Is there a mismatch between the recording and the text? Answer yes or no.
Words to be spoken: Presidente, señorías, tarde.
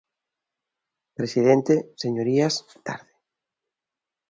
no